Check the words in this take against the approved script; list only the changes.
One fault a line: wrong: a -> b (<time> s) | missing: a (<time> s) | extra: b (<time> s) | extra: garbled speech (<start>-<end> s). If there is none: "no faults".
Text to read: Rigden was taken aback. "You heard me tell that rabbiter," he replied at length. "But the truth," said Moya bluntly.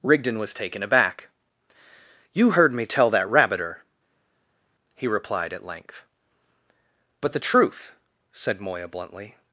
no faults